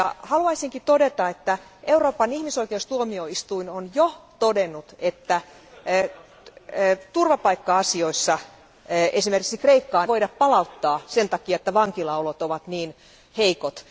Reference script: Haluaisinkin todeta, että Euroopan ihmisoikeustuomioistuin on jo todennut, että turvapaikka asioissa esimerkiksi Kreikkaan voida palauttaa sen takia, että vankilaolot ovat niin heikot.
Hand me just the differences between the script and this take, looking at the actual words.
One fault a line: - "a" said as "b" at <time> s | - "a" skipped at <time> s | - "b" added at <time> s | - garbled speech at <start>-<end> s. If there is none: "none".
none